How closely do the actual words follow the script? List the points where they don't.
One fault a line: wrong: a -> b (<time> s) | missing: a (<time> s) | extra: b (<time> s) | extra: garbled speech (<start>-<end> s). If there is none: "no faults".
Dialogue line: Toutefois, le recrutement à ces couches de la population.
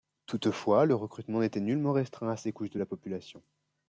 extra: n'était nullement restreint (1.4 s)